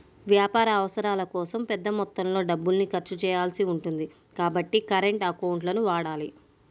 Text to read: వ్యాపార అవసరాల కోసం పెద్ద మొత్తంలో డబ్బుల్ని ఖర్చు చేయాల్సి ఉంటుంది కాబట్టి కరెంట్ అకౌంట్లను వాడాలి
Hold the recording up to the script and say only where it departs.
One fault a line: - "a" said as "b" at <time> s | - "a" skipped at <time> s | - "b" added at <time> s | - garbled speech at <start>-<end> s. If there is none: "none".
none